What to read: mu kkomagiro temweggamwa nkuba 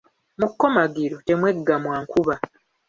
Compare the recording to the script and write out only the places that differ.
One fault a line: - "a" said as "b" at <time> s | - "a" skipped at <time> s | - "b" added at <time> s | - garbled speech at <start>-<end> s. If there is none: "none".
none